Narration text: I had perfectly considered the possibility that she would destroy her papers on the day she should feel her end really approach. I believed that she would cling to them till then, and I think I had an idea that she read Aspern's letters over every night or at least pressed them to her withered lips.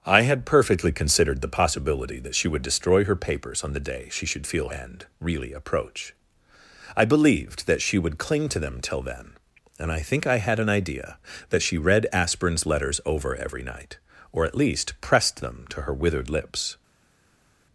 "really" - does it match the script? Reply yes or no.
yes